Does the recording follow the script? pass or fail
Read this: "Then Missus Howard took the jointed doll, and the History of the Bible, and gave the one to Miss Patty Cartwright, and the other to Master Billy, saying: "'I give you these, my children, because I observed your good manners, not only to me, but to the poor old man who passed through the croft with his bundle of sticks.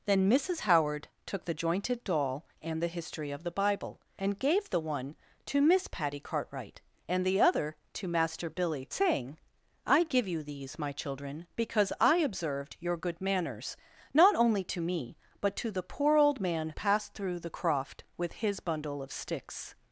fail